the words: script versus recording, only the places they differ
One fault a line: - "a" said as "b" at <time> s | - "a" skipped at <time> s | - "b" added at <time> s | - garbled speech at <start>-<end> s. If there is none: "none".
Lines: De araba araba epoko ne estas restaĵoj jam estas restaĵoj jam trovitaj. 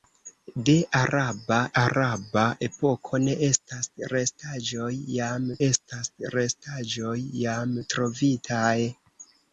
none